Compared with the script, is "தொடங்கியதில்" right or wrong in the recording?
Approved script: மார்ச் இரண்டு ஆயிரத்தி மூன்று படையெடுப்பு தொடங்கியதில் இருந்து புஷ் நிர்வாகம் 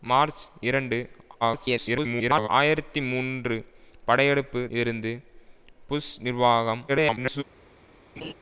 wrong